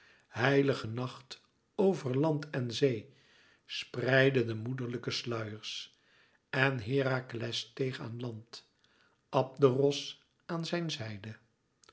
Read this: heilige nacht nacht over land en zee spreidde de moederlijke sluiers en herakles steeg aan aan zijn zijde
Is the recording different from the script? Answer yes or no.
yes